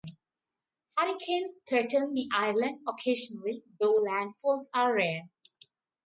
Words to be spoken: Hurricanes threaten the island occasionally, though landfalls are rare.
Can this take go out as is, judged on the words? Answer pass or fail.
pass